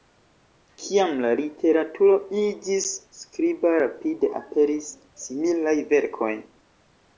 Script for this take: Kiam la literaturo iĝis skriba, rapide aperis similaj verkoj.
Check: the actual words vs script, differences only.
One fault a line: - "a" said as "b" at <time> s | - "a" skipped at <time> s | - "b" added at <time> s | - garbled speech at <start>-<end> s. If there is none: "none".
none